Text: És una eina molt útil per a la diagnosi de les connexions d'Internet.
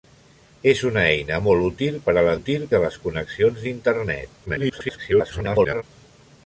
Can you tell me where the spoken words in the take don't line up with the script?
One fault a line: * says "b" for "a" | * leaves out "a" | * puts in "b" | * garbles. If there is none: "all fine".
* says "útil" for "diagnosi"
* garbles